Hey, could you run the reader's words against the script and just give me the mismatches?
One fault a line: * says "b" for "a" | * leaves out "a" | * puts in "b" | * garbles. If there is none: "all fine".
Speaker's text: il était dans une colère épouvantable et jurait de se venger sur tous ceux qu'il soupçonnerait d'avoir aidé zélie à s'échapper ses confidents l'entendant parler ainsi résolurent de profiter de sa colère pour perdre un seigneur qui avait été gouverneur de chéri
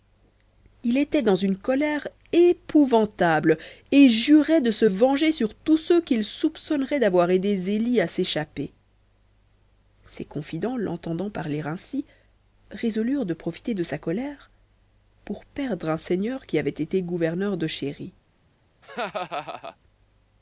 all fine